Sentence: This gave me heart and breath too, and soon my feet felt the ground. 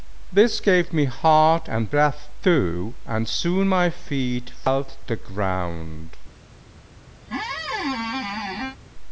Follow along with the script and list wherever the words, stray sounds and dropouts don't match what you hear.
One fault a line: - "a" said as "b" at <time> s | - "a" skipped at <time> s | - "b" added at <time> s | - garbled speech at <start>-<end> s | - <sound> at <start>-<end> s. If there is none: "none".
- squeak at 7.2-8.8 s